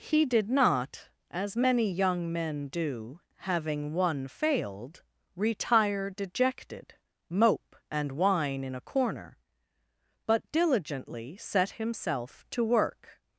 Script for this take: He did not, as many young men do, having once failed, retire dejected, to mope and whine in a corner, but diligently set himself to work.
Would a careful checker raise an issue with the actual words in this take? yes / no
yes